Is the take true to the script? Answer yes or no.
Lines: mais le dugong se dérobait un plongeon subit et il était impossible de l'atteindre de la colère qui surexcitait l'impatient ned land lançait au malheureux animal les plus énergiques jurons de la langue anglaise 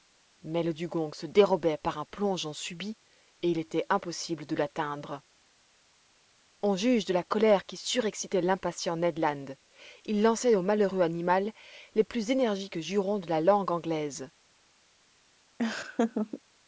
no